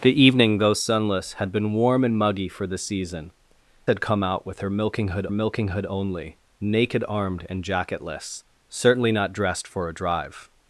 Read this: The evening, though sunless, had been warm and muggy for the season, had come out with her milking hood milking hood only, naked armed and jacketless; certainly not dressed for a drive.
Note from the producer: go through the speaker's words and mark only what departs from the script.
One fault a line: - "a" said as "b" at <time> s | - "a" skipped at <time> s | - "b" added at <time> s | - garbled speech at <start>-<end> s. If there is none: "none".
none